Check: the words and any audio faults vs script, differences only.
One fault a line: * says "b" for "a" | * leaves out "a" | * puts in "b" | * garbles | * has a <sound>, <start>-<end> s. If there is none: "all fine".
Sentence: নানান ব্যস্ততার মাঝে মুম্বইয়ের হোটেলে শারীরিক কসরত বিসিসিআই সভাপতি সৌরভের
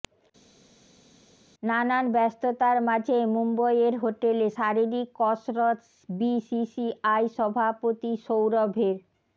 all fine